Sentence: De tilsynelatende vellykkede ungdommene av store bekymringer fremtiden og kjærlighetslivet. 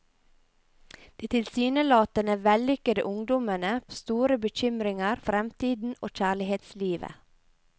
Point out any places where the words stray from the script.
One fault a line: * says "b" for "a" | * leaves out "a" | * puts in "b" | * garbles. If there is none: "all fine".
all fine